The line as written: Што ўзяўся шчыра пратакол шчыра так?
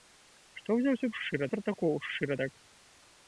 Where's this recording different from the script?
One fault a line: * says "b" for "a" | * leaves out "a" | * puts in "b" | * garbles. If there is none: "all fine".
all fine